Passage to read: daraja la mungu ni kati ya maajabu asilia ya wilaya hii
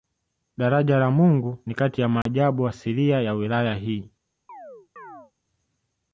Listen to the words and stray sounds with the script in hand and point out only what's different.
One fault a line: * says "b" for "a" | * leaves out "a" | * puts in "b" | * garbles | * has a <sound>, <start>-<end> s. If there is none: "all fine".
* has a dropout, 2.2-2.3 s
* has a chirp, 4.5-5.3 s